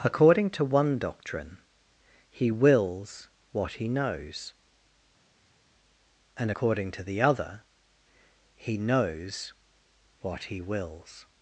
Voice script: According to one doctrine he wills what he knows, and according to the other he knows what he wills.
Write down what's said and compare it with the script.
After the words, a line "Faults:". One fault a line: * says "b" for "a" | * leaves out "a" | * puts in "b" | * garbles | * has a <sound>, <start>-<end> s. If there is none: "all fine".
According to one doctrine he wills what he knows, and according to the other he knows what he wills.
Faults:
all fine